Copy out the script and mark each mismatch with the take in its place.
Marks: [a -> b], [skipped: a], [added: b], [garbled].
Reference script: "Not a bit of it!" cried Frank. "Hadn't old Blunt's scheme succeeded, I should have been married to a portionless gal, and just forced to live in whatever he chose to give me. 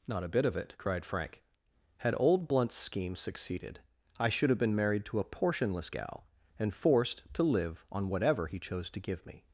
"Not a bit of it!" cried Frank. ["Hadn't -> Had] old Blunt's scheme succeeded, I should have been married to a portionless gal, and [skipped: just] forced to live [in -> on] whatever he chose to give me.